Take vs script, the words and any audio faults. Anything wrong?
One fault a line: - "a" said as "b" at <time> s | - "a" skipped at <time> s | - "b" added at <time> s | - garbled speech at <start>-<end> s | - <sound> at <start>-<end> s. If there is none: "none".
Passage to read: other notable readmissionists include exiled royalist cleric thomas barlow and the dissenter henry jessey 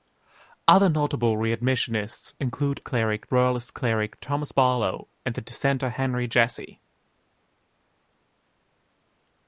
- "exiled" said as "cleric" at 2.8 s